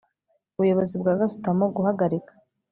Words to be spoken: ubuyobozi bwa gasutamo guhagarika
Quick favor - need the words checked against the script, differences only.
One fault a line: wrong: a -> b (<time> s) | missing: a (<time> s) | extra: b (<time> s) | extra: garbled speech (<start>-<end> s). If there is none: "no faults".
no faults